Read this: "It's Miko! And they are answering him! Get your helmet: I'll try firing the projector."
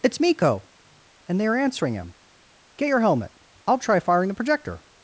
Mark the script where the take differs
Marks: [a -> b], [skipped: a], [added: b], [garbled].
"It's Miko! And they are answering him! Get your helmet: I'll try firing the projector."